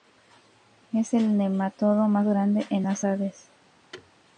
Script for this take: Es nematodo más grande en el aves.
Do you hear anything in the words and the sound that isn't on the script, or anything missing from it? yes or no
yes